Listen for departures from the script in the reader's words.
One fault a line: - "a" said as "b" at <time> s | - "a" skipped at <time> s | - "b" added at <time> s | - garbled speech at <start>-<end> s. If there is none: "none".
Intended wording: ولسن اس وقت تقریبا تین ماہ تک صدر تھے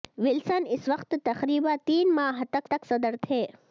- "تک" added at 2.7 s